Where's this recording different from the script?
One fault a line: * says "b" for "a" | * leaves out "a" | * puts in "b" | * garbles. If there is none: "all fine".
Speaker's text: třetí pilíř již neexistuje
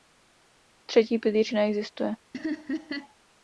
* leaves out "již"